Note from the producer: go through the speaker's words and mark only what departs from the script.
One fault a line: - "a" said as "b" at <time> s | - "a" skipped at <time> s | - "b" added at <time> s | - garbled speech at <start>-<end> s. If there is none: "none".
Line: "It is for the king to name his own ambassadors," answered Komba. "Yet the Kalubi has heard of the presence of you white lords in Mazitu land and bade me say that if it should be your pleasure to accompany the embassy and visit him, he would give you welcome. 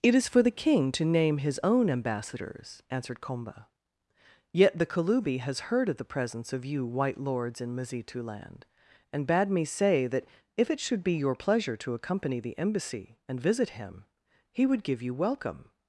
none